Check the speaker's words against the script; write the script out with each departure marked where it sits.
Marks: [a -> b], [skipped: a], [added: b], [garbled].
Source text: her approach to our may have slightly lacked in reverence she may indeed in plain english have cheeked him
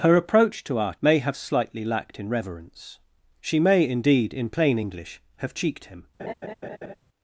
her approach to our may have slightly lacked in reverence she may indeed in plain english have cheeked him